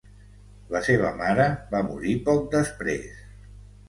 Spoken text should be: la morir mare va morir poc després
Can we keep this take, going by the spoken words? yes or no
no